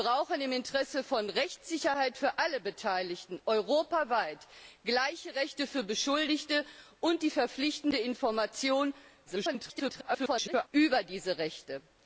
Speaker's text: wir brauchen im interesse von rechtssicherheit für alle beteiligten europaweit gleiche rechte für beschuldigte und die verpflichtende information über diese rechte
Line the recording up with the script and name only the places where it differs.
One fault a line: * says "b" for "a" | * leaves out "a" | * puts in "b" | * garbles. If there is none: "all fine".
* garbles